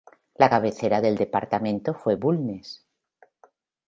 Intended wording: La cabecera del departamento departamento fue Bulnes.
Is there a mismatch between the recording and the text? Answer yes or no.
yes